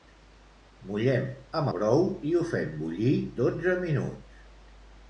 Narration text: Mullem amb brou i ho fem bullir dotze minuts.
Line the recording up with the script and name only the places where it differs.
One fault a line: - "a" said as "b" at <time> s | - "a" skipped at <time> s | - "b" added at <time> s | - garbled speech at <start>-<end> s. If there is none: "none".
none